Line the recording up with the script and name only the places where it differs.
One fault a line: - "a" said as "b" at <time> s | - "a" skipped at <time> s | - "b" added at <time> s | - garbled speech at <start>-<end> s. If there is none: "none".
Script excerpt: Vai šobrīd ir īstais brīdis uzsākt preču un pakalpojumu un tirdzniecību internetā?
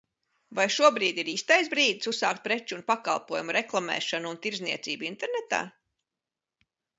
- "reklamēšanu" added at 3.6 s